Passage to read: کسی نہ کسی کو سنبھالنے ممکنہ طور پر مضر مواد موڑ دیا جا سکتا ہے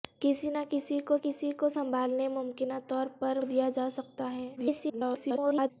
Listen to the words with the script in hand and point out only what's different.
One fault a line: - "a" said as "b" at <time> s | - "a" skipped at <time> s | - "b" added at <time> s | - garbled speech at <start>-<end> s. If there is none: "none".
- "کسی کو" added at 1.2 s
- "مضر مواد موڑ" skipped at 3.4 s
- garbled speech at 4.6-5.7 s